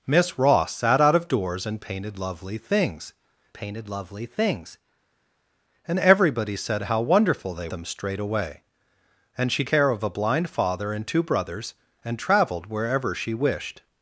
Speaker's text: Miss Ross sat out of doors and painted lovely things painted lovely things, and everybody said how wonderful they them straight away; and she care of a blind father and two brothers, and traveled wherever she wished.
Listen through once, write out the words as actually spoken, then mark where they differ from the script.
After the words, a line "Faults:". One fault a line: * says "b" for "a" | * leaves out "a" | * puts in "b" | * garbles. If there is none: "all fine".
Miss Ross sat out of doors and painted lovely things painted lovely things, and everybody said how wonderful they them straight away; and she care of a blind father and two brothers, and traveled wherever she wished.
Faults:
all fine